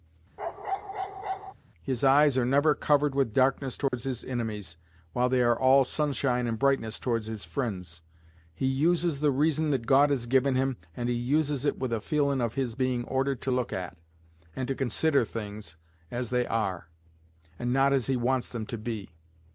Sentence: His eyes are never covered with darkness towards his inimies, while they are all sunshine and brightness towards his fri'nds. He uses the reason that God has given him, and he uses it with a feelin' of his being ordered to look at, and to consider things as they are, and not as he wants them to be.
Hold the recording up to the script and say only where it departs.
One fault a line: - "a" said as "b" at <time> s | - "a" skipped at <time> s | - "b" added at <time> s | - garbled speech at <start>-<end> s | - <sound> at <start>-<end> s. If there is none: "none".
- bark at 0.4-1.5 s
- dropout at 3.9-3.9 s